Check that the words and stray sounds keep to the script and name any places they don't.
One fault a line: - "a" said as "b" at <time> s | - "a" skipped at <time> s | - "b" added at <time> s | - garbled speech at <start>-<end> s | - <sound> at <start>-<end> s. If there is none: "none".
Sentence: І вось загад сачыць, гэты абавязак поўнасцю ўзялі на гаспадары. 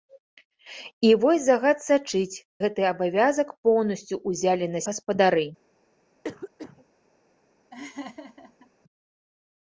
- cough at 6.2-6.9 s
- laugh at 7.7-8.7 s